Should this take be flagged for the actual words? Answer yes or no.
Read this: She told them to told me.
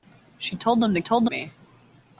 no